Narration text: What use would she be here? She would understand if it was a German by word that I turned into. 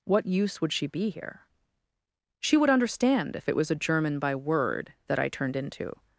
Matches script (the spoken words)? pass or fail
pass